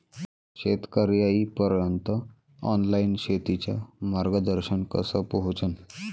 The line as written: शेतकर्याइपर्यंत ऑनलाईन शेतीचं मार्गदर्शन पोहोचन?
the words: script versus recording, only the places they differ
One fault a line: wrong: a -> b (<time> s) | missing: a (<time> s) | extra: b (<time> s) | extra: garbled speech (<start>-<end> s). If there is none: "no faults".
extra: कस (4.9 s)